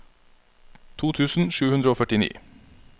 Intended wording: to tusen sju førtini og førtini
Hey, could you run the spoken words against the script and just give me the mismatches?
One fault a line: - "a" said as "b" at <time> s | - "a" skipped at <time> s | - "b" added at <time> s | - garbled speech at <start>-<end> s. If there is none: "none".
- "førtini" said as "hundre" at 1.8 s